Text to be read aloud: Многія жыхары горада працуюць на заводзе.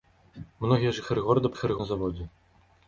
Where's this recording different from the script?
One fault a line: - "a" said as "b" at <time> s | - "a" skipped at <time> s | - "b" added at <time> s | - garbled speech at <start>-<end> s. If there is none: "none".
- "працуюць" said as "жыхары" at 1.5 s